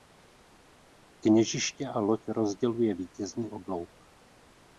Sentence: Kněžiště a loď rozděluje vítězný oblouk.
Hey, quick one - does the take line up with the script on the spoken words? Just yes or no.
yes